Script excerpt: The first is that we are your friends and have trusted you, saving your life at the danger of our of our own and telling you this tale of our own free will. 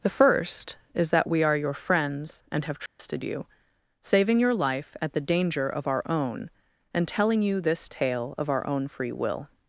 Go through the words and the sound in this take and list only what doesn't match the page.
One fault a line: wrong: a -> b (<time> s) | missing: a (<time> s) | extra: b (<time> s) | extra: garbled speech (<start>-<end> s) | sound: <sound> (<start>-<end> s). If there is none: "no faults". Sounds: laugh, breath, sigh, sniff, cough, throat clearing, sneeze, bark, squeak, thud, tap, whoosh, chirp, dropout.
sound: dropout (2.9-3.0 s)
missing: of our (6.0 s)